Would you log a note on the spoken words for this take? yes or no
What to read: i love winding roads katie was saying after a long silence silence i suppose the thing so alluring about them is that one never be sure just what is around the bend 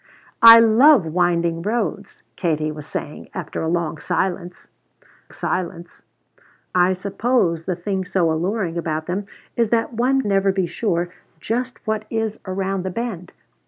no